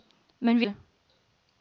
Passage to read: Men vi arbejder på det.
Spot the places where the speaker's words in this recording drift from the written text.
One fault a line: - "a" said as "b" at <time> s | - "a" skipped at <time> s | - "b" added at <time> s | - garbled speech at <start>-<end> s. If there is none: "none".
- "arbejder på" skipped at 0.7 s